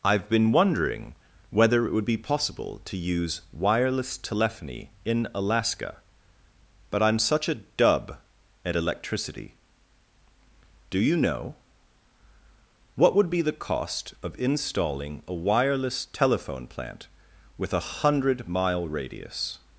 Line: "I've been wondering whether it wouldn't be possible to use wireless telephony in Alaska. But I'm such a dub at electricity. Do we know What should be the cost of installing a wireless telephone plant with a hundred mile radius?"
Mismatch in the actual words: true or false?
true